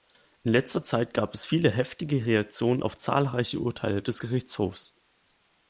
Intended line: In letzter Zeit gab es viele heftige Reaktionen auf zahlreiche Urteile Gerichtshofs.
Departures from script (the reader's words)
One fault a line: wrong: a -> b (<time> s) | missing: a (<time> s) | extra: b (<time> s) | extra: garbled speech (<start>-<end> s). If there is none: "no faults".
extra: des (4.0 s)